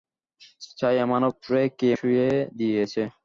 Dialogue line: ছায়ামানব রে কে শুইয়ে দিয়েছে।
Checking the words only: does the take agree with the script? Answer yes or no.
yes